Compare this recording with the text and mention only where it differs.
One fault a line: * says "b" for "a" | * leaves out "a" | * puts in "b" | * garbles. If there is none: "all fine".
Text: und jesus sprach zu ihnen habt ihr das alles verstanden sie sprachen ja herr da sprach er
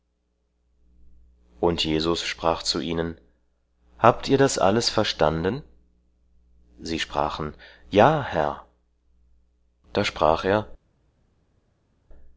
all fine